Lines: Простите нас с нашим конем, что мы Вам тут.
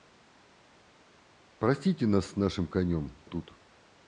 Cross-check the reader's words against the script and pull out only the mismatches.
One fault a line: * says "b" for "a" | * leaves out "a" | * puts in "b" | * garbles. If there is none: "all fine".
* leaves out "что мы Вам"